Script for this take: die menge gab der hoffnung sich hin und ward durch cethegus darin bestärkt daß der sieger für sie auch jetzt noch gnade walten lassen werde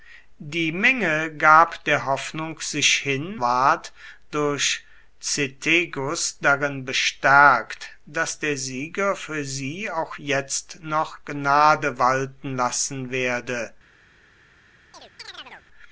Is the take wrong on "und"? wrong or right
wrong